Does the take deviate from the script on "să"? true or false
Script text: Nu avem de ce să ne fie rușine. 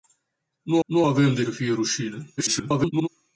true